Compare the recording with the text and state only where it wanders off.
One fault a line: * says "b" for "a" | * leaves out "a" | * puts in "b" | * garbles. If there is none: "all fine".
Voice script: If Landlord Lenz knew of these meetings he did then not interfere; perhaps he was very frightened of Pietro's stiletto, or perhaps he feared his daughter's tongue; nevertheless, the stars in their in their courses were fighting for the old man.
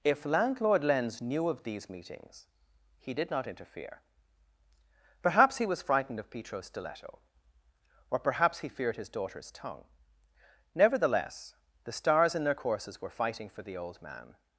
* leaves out "then"
* leaves out "very"
* leaves out "in their"